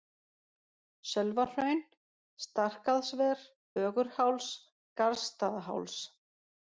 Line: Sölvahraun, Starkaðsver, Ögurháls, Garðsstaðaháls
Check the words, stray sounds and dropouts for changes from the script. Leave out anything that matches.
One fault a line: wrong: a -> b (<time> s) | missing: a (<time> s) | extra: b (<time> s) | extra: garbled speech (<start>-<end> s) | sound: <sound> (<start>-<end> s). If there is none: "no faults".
no faults